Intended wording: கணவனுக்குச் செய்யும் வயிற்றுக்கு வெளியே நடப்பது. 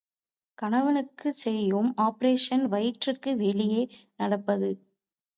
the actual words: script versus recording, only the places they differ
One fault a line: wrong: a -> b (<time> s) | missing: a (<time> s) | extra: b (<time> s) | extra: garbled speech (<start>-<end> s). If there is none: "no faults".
extra: ஆப்பரேஷன் (2.0 s)